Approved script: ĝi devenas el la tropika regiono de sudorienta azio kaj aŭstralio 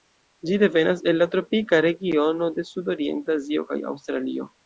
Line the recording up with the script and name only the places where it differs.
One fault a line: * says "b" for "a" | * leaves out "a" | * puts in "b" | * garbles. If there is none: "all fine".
all fine